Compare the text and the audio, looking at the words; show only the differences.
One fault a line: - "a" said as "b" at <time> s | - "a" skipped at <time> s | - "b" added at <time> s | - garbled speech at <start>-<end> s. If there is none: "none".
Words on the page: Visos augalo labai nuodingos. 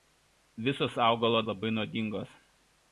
none